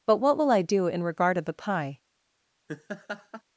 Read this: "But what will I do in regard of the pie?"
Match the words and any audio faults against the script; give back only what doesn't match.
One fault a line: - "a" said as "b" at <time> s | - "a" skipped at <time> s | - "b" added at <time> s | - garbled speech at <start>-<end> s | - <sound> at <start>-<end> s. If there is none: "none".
- laugh at 2.7-3.4 s